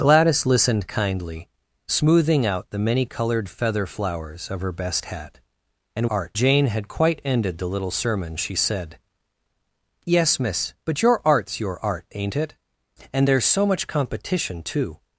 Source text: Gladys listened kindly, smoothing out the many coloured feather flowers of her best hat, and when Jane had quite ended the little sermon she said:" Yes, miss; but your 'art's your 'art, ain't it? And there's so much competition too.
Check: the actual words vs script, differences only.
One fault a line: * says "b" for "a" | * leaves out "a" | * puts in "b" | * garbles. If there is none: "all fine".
* says "art" for "when"